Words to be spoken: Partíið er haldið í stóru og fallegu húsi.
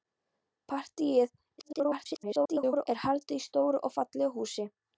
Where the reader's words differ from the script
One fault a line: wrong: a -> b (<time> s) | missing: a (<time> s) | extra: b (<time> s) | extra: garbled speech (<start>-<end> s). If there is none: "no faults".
extra: garbled speech (1.6-2.9 s)